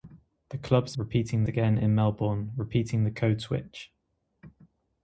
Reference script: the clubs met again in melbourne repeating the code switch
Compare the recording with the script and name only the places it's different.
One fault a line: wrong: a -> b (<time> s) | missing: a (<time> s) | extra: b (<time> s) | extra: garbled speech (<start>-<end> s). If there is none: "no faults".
wrong: met -> repeating (1.0 s)